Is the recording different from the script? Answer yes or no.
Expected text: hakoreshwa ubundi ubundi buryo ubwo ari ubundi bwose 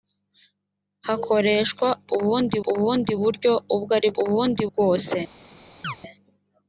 no